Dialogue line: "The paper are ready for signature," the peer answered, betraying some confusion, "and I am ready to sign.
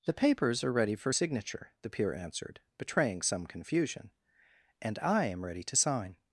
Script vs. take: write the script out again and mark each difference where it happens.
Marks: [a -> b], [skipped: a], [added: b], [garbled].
"The [paper -> papers] are ready for signature," the peer answered, betraying some confusion, "and I am ready to sign.